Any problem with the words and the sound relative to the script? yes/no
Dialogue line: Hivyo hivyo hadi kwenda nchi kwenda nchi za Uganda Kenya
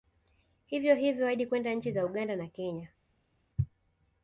yes